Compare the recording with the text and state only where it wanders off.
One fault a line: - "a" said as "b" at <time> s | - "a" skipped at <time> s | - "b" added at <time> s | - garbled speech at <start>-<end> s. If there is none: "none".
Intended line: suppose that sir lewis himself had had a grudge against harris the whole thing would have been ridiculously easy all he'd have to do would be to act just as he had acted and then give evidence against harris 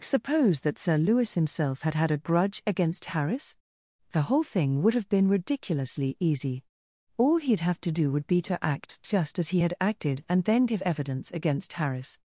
none